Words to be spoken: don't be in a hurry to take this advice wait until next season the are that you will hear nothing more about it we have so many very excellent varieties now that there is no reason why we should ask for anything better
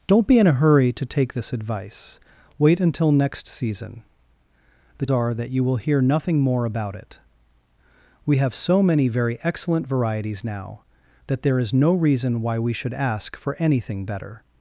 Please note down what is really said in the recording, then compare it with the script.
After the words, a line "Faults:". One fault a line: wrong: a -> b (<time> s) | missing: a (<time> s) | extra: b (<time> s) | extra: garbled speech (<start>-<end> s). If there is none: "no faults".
don't be in a hurry to take this advice wait until next season the are that you will hear nothing more about it we have so many very excellent varieties now that there is no reason why we should ask for anything better
Faults:
no faults